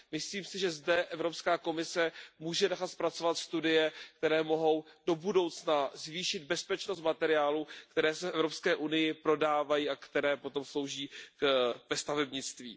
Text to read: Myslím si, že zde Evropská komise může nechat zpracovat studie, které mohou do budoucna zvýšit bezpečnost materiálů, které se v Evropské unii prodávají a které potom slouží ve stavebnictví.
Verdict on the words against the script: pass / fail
pass